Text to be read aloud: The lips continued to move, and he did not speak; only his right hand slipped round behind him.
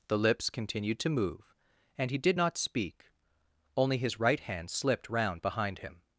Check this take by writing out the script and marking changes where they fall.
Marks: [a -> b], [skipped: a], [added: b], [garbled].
The lips continued to move, and he did not speak; only his right hand slipped round behind him.